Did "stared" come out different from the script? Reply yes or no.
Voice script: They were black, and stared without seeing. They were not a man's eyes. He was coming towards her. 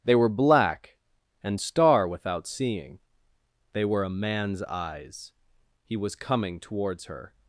yes